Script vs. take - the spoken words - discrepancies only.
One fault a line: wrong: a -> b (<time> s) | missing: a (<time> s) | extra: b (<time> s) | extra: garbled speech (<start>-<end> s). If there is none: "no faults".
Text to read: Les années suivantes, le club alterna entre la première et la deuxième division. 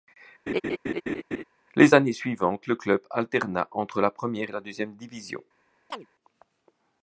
no faults